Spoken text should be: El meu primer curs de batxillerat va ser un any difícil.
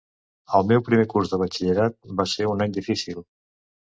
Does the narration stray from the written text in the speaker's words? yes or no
no